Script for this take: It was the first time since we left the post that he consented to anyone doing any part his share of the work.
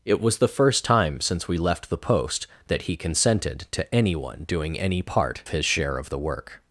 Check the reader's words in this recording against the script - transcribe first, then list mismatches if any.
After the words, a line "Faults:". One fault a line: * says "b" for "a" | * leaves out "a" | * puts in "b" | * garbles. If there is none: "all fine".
It was the first time since we left the post that he consented to anyone doing any part his share of the work.
Faults:
all fine